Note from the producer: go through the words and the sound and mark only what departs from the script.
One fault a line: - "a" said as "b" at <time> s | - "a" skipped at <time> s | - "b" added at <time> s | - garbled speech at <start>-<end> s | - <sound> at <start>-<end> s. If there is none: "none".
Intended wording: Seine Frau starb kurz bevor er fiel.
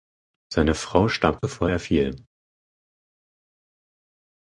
- "kurz" skipped at 1.4 s